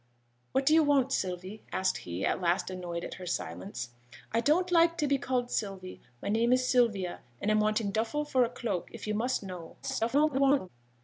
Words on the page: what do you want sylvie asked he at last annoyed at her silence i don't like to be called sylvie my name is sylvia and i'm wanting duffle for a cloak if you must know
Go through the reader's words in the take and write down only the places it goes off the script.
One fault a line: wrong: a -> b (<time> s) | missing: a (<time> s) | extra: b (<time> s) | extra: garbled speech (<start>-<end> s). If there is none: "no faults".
extra: garbled speech (9.8-10.7 s)